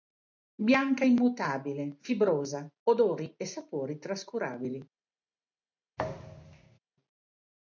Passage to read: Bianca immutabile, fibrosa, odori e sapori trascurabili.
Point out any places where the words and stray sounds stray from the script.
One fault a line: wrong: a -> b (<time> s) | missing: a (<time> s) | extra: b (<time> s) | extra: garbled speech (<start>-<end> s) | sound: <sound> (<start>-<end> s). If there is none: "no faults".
sound: thud (6.0-6.8 s)